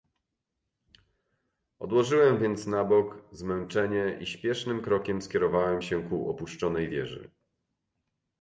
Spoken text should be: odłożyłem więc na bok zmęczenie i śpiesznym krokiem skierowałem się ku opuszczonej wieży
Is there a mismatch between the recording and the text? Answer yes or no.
no